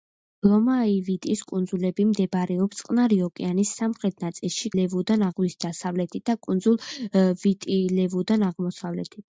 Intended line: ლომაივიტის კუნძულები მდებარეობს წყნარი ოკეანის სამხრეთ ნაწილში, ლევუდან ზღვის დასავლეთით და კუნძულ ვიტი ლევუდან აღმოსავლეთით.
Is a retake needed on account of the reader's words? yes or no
no